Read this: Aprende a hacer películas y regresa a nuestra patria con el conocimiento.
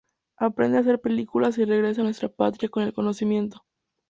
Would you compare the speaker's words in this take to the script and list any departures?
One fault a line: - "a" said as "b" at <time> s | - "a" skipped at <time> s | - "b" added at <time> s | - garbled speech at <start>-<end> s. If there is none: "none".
none